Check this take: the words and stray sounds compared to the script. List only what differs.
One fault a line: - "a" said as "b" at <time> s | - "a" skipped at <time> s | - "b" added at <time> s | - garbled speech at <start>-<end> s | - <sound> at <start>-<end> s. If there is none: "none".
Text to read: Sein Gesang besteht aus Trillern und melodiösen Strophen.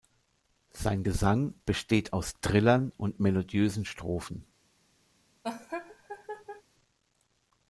- laugh at 5.4-6.6 s